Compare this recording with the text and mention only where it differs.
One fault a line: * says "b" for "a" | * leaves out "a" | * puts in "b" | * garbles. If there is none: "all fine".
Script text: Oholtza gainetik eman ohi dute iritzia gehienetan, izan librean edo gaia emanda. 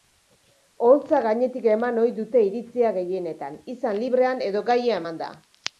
all fine